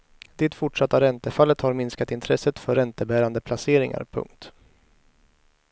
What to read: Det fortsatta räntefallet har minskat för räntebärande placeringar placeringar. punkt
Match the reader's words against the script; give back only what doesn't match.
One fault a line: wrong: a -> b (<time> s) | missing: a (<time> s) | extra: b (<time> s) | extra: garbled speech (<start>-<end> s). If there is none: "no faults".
extra: intresset (2.1 s)
missing: placeringar (4.0 s)